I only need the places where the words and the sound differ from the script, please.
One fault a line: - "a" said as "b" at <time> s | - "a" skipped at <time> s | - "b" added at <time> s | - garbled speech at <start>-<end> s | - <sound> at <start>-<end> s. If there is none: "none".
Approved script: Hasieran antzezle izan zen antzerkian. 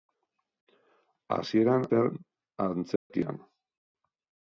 - "antzezle izan" skipped at 1.9 s
- dropout at 3.0-3.1 s